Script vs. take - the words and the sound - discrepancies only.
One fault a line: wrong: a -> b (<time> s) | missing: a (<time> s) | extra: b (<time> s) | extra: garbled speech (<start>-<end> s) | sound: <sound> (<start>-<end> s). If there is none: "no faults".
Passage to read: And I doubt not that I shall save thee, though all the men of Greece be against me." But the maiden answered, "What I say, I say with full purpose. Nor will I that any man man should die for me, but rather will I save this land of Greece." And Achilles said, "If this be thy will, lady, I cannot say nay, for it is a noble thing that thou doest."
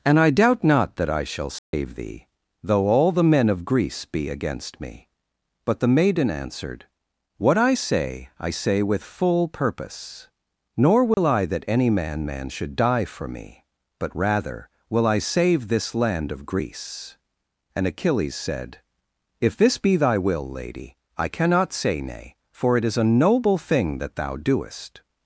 sound: dropout (1.6-1.7 s)
sound: dropout (11.1-11.2 s)